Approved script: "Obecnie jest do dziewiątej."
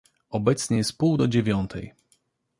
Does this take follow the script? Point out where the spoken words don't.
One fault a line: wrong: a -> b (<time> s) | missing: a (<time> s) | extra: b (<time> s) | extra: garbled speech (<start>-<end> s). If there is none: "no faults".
extra: pół (1.0 s)